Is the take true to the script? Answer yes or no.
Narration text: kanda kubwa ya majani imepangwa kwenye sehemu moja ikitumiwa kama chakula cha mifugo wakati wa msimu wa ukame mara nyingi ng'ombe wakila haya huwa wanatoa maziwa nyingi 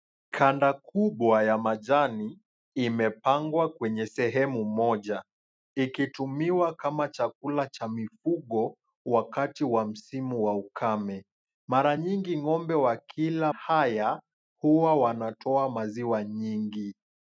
yes